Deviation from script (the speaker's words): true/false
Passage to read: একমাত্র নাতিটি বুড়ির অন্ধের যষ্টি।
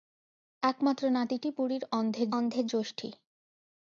true